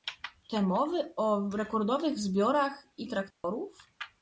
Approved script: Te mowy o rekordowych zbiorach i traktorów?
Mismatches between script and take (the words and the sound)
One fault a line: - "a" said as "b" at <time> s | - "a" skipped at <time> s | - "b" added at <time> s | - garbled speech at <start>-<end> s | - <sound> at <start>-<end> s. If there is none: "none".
- dropout at 3.3-3.4 s